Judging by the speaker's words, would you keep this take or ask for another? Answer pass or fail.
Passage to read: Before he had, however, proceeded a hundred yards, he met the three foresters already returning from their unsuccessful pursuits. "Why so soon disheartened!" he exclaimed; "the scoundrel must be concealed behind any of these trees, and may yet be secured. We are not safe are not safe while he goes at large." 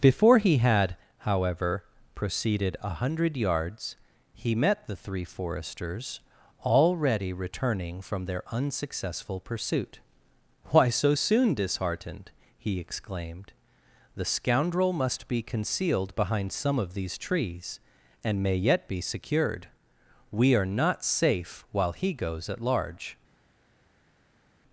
fail